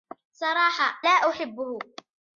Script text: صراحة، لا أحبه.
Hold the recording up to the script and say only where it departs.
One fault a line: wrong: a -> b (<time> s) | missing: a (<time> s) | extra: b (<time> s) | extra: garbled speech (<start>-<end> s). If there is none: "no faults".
no faults